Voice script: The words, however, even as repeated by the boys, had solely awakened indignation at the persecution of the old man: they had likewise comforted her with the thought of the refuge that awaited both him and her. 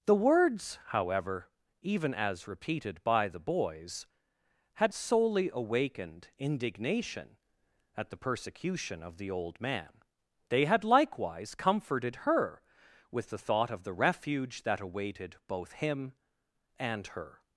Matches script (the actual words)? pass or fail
pass